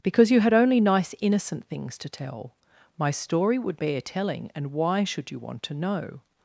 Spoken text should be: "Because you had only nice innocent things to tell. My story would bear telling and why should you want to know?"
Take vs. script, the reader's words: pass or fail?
pass